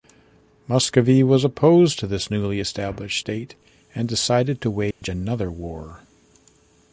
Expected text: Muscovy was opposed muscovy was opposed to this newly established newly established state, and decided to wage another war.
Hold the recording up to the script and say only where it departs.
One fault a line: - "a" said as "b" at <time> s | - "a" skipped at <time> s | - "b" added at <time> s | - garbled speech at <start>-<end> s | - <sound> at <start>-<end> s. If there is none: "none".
- "muscovy was opposed" skipped at 2.0 s
- "newly established" skipped at 3.2 s
- dropout at 4.9-5.0 s